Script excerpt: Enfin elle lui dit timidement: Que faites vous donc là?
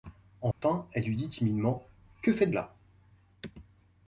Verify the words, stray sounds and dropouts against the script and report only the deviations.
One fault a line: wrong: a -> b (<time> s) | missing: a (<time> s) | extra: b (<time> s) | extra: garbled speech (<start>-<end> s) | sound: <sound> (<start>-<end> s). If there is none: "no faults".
sound: dropout (0.5-0.6 s)
missing: vous donc (2.5 s)